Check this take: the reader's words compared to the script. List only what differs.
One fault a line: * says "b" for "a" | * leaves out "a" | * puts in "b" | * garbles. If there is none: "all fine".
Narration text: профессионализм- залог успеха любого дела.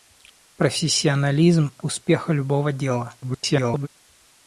* leaves out "залог"
* garbles